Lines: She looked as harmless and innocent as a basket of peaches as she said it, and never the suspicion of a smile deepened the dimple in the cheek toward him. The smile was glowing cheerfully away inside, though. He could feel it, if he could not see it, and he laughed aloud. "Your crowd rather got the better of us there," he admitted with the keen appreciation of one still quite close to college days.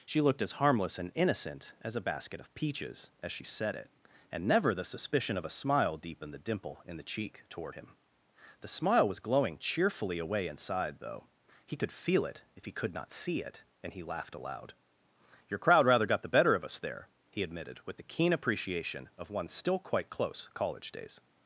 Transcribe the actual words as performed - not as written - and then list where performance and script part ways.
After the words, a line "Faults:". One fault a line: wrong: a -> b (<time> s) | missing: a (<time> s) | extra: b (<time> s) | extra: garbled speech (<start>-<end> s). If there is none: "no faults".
She looked as harmless and innocent as a basket of peaches as she said it, and never the suspicion of a smile deepened the dimple in the cheek toward him. The smile was glowing cheerfully away inside, though. He could feel it, if he could not see it, and he laughed aloud. "Your crowd rather got the better of us there," he admitted with the keen appreciation of one still quite close college days.
Faults:
missing: to (20.5 s)